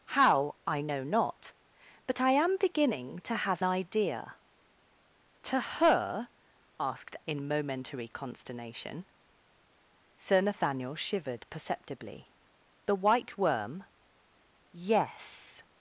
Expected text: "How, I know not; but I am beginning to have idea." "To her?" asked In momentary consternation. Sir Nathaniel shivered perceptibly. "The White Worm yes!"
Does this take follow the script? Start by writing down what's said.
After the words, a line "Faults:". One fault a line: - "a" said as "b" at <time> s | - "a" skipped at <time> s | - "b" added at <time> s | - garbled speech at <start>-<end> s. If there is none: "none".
"How, I know not; but I am beginning to have idea." "To her?" asked In momentary consternation. Sir Nathaniel shivered perceptibly. "The White Worm yes!"
Faults:
none